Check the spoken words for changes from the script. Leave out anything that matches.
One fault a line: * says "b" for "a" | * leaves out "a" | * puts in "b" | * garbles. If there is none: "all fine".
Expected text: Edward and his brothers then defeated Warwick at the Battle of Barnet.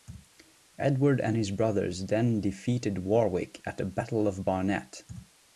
all fine